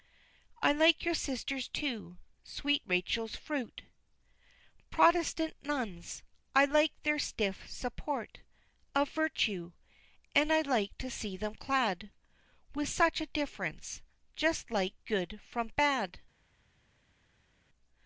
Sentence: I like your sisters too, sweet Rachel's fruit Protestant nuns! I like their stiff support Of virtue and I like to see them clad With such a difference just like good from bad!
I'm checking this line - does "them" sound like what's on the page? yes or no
yes